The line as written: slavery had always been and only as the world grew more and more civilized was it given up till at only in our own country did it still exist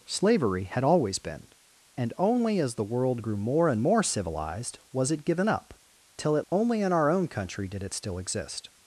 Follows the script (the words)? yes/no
yes